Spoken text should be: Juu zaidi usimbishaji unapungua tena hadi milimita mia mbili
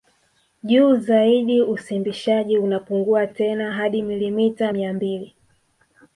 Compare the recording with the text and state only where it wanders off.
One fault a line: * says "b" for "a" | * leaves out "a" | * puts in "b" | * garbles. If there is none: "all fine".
all fine